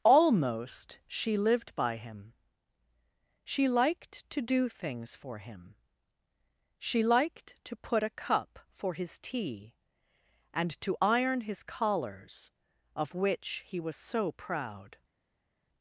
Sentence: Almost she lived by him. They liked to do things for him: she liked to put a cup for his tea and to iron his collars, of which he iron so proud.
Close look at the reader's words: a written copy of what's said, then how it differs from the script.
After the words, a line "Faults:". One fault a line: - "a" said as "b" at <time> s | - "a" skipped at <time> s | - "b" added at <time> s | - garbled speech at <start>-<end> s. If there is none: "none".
Almost she lived by him. She liked to do things for him: she liked to put a cup for his tea and to iron his collars, of which he was so proud.
Faults:
- "They" said as "She" at 3.4 s
- "iron" said as "was" at 13.8 s